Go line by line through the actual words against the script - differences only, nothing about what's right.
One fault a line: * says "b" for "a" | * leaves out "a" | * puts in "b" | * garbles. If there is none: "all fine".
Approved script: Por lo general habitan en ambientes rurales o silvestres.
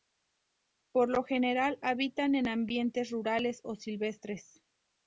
all fine